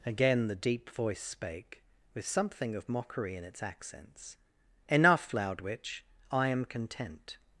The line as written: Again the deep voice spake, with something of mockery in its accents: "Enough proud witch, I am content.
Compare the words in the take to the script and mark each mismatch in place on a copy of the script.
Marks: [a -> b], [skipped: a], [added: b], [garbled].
Again the deep voice spake, with something of mockery in its accents: "Enough [proud -> loud] witch, I am content.